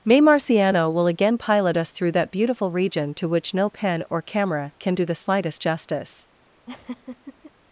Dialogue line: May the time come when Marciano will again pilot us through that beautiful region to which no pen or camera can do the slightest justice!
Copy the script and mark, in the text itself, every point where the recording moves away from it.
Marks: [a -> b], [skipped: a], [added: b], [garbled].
May [skipped: the time come when] Marciano will again pilot us through that beautiful region to which no pen or camera can do the slightest justice!